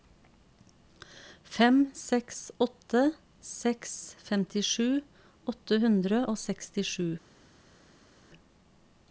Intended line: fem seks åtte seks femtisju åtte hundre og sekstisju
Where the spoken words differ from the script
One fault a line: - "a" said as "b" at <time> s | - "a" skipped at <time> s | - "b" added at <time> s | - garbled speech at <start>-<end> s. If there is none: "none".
none